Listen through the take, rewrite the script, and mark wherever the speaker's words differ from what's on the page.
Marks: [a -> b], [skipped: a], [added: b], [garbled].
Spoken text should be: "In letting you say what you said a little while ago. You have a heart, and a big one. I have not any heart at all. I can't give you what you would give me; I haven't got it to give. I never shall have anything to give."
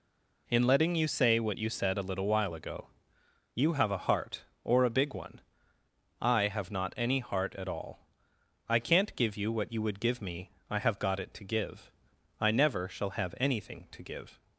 "In letting you say what you said a little while ago. You have a heart, [and -> or] a big one. I have not any heart at all. I can't give you what you would give me; I [haven't -> have] got it to give. I never shall have anything to give."